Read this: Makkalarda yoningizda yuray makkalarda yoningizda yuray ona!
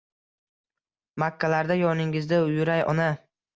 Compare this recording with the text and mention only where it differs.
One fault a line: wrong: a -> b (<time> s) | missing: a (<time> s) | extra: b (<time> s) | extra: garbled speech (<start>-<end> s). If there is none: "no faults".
missing: makkalarda yoningizda yuray (2.9 s)